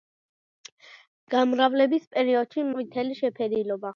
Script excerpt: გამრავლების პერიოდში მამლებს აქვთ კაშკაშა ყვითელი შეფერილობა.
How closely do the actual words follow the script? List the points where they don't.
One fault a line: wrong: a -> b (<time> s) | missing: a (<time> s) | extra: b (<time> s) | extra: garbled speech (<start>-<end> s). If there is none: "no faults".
missing: მამლებს აქვთ კაშკაშა (2.6 s)